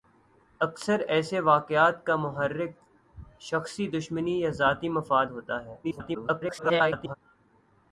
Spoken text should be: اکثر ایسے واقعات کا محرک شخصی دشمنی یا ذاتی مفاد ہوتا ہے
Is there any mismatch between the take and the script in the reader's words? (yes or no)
yes